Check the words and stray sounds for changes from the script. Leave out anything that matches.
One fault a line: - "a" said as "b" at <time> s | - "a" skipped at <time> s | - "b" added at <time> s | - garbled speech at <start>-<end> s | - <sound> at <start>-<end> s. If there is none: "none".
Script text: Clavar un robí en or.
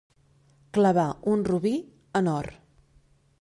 none